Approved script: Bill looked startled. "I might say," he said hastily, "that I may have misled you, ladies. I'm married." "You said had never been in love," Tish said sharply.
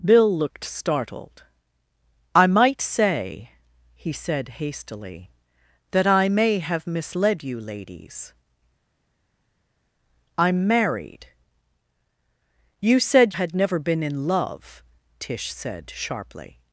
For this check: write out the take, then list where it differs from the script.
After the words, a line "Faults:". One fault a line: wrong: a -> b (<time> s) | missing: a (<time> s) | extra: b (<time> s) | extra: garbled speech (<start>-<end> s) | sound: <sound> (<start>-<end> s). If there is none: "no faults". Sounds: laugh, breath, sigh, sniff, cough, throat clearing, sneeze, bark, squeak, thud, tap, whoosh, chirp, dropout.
Bill looked startled. "I might say," he said hastily, "that I may have misled you, ladies. I'm married." "You said had never been in love," Tish said sharply.
Faults:
no faults